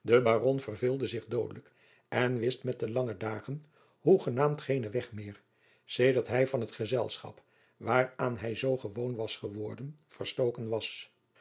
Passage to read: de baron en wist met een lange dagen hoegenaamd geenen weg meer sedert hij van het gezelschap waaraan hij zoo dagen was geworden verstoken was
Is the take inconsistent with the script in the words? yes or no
yes